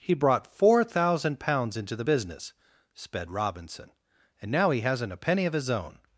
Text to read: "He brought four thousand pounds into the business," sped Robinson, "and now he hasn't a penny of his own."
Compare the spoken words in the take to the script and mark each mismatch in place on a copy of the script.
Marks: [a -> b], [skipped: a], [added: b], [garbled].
"He brought four thousand pounds into the business," sped Robinson, "and now he hasn't a penny of his own."